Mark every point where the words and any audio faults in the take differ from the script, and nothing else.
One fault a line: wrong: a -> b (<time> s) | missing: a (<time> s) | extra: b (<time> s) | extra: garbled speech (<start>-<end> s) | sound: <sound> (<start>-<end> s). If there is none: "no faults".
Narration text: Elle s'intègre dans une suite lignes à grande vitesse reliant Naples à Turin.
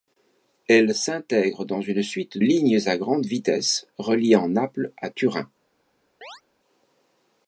sound: chirp (6.2-6.4 s)